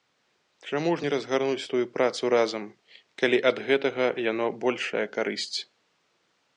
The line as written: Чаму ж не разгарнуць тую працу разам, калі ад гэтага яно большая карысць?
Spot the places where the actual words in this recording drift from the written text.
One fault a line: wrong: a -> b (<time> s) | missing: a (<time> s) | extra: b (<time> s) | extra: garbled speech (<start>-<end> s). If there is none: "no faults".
no faults